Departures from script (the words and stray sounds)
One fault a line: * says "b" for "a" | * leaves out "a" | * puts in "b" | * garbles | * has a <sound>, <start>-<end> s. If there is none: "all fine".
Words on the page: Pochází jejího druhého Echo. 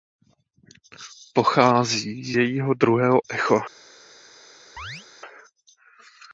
* has a chirp, 4.8-5.1 s